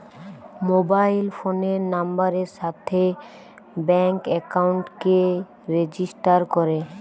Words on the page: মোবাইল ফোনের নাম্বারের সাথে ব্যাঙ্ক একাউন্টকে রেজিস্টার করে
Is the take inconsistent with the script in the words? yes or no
no